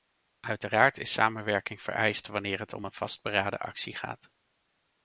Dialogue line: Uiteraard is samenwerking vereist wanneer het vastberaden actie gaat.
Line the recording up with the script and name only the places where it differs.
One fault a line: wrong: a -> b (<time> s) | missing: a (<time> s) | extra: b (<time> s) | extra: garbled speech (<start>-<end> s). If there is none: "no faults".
extra: om een (2.7 s)